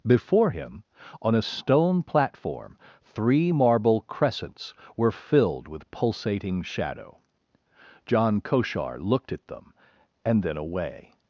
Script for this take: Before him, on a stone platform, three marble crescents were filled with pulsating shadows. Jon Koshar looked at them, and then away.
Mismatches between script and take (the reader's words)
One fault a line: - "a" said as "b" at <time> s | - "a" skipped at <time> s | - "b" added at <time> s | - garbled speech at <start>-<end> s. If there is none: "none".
- "shadows" said as "shadow" at 6.6 s